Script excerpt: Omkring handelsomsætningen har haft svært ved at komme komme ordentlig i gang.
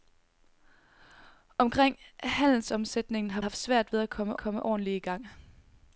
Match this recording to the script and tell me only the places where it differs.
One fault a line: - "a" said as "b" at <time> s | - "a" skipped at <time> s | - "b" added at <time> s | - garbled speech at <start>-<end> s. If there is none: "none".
none